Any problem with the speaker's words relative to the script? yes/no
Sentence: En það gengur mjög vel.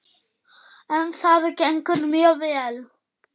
no